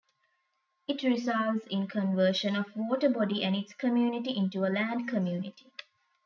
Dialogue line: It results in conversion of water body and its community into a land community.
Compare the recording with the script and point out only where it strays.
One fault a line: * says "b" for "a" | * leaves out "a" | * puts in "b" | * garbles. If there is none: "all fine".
all fine